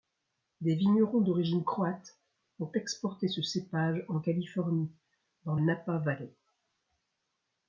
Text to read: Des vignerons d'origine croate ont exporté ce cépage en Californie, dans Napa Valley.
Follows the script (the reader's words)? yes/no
yes